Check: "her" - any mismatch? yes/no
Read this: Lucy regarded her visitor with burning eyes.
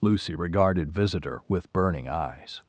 yes